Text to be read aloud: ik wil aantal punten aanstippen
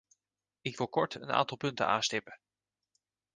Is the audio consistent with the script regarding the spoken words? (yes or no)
no